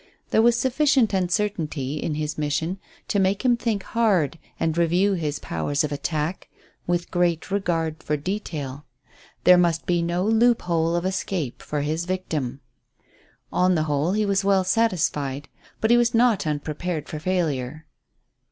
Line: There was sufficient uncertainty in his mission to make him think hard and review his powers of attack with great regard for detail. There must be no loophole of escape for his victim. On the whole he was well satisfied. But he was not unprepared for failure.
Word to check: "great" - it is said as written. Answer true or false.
true